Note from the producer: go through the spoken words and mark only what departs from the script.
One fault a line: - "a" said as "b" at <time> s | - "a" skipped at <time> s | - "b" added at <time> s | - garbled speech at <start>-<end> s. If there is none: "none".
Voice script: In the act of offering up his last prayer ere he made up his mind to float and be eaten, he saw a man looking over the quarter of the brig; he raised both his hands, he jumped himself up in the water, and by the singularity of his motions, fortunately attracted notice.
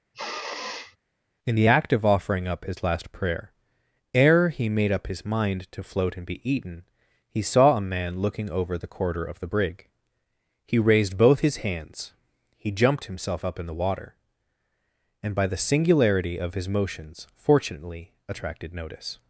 none